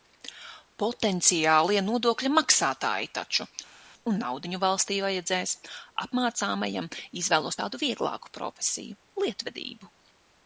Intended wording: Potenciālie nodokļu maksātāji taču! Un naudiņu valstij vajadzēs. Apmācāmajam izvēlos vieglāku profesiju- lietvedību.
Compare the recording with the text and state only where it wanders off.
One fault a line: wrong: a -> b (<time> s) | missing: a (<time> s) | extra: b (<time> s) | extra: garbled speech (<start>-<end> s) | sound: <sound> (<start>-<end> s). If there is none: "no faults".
extra: tādu (7.6 s)